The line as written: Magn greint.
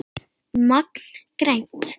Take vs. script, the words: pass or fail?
pass